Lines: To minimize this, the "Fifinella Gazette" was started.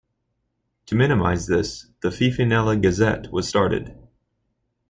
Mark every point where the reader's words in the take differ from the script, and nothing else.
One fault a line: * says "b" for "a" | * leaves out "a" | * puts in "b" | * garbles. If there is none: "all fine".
all fine